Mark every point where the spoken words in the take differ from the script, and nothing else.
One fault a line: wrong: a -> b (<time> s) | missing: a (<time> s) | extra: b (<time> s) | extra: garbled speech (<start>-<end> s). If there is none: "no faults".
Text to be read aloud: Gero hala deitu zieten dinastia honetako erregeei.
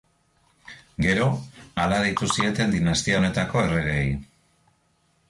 no faults